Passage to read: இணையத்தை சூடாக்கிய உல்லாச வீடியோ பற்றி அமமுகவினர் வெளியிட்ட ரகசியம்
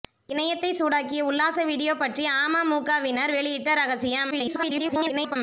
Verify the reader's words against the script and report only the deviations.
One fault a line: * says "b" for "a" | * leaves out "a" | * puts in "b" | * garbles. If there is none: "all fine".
* garbles